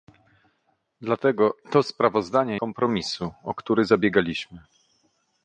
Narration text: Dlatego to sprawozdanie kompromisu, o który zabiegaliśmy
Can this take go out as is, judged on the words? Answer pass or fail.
pass